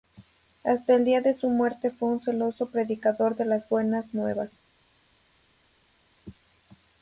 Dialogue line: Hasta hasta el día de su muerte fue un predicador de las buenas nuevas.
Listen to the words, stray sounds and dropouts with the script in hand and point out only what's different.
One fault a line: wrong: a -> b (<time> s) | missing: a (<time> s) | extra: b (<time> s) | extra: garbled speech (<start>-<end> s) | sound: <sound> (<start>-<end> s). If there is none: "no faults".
missing: hasta (0.9 s)
extra: celoso (2.2 s)